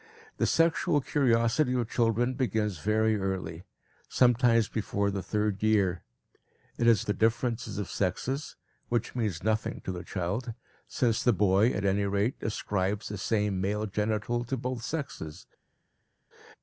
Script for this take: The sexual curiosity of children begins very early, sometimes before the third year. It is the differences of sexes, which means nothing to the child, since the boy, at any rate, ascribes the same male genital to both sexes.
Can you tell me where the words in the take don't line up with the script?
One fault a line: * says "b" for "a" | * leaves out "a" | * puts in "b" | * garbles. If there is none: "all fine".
all fine